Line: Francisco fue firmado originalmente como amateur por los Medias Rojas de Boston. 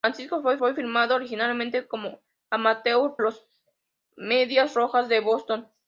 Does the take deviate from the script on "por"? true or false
true